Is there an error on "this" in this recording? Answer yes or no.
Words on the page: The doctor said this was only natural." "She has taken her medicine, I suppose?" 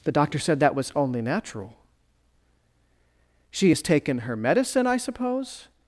yes